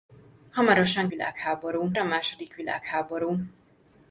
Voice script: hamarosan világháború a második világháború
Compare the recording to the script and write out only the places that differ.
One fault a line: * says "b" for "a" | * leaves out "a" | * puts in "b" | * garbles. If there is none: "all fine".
all fine